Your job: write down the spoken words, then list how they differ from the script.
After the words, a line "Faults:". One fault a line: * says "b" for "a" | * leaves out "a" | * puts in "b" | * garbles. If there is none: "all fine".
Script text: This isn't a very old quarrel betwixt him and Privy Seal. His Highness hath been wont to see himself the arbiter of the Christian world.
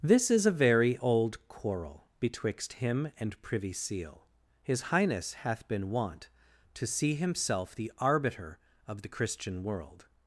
This is a very old quarrel betwixt him and Privy Seal. His Highness hath been wont to see himself the arbiter of the Christian world.
Faults:
* says "is" for "isn't"